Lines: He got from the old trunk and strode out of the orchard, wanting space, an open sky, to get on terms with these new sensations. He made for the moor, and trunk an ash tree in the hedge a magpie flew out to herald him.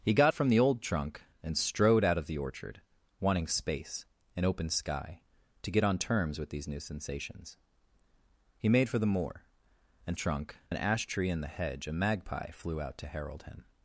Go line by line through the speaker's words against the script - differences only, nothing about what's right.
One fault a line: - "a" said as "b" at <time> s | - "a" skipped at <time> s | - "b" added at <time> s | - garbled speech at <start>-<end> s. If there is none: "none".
none